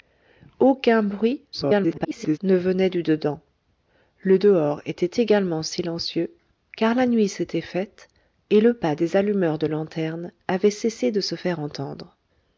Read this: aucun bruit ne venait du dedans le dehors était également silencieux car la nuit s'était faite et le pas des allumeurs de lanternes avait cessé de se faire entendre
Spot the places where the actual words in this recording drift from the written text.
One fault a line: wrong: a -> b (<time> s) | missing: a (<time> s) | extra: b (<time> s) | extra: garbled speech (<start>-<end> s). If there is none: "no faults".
extra: garbled speech (1.5-2.4 s)